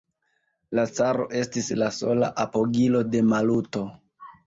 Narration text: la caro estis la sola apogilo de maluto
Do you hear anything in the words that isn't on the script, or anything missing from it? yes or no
no